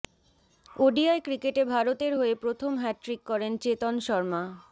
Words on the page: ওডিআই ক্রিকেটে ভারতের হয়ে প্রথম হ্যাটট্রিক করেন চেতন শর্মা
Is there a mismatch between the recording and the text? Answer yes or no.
no